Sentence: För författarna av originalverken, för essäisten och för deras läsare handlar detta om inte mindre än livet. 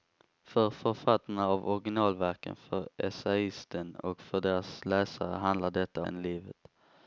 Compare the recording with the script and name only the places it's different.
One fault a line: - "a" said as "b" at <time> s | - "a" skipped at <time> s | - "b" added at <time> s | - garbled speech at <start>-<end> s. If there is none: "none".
- "om inte mindre" skipped at 6.1 s